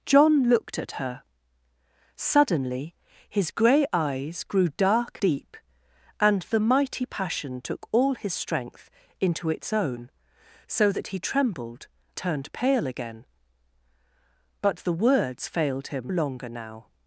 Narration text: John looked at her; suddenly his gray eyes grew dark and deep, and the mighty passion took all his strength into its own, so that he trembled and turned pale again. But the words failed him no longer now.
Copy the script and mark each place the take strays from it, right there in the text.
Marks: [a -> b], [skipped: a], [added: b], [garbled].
John looked at her; suddenly his gray eyes grew dark [skipped: and] deep, and the mighty passion took all his strength into its own, so that he trembled [skipped: and] turned pale again. But the words failed him [skipped: no] longer now.